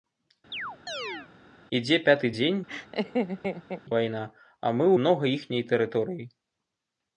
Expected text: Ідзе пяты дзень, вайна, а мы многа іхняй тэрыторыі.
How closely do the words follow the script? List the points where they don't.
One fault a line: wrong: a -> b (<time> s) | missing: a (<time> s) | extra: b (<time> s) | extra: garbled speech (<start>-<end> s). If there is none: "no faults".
no faults